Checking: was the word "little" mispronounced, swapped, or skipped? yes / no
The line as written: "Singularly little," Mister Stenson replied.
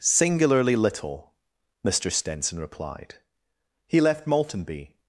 no